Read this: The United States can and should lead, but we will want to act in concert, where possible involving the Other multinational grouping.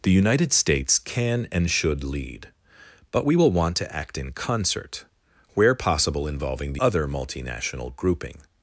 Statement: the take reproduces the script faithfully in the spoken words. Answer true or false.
true